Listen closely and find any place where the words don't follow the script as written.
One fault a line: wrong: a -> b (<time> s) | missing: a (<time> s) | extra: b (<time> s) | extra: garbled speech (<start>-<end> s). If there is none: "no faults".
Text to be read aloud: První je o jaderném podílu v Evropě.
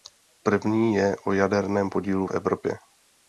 no faults